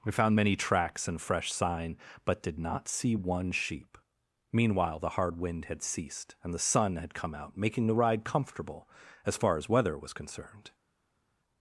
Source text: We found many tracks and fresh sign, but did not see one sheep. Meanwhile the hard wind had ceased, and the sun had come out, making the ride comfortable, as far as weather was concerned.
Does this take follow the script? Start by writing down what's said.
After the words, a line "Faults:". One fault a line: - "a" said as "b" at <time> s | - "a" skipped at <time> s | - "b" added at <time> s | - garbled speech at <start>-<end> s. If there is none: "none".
We found many tracks and fresh sign, but did not see one sheep. Meanwhile the hard wind had ceased, and the sun had come out, making the ride comfortable, as far as weather was concerned.
Faults:
none